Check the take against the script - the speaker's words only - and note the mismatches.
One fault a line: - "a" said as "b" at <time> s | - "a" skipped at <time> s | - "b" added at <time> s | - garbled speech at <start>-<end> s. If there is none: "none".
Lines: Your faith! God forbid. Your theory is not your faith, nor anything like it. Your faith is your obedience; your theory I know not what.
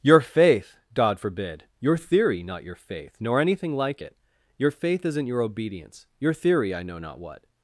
- "is" skipped at 2.4 s
- "is" said as "isn't" at 5.0 s